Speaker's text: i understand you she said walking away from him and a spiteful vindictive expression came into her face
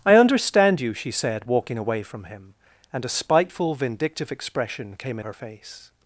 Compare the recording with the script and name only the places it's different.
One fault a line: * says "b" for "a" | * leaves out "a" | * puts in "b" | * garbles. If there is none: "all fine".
* leaves out "into"